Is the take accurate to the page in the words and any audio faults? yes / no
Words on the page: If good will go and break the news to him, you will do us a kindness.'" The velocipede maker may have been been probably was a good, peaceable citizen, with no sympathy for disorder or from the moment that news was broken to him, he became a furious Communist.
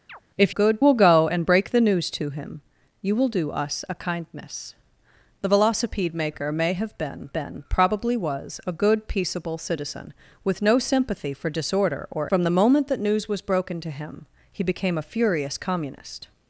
no